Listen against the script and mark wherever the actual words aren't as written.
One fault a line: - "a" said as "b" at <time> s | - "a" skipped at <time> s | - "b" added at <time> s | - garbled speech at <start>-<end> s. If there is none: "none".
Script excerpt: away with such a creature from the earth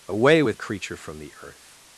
- "such" skipped at 0.6 s